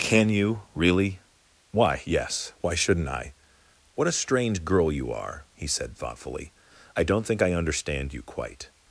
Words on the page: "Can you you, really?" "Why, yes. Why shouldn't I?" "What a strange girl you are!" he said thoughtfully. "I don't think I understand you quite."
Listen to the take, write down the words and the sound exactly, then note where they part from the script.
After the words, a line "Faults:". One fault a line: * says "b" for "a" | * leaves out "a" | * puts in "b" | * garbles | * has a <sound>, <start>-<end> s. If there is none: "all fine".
"Can you, really?" "Why, yes. Why shouldn't I?" "What a strange girl you are!" he said thoughtfully. "I don't think I understand you quite."
Faults:
* leaves out "you"